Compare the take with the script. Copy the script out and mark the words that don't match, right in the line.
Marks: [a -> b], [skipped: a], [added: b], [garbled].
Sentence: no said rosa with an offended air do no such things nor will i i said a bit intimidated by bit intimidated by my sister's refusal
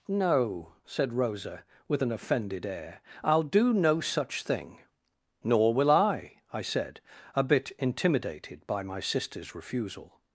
no said rosa with an offended air [added: i'll] do no such [things -> thing] nor will i i said a bit intimidated by [skipped: bit intimidated by] my sister's refusal